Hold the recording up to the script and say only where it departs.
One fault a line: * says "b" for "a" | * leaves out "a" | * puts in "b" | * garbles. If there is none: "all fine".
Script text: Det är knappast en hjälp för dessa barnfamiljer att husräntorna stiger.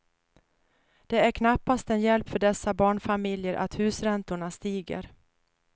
all fine